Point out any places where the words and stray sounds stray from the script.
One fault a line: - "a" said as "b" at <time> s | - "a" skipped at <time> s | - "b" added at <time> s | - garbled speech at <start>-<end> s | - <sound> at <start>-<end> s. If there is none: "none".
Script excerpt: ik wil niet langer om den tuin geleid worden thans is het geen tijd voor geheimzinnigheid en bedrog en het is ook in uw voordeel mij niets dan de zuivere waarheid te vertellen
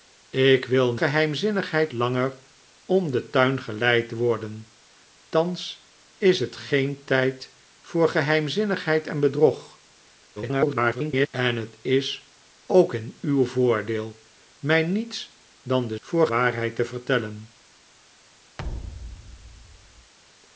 - "niet" said as "geheimzinnigheid" at 0.9 s
- garbled speech at 10.4-11.3 s
- "zuivere" said as "voor" at 16.0 s
- thud at 18.6-20.1 s